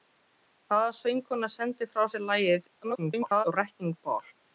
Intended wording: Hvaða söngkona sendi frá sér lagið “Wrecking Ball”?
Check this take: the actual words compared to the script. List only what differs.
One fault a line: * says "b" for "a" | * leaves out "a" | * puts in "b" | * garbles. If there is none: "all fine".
* garbles